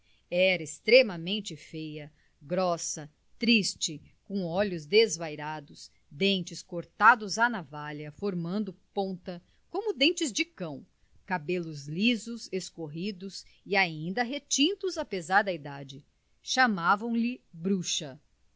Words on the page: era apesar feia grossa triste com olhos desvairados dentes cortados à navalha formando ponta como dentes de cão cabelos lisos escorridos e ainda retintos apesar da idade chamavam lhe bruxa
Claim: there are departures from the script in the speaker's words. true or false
true